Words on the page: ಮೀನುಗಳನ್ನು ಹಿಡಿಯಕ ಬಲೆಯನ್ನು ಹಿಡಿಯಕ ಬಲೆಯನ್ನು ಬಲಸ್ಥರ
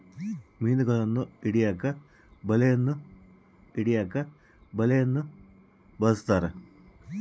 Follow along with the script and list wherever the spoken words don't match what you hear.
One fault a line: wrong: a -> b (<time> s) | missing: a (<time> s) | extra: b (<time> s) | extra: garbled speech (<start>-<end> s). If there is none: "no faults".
no faults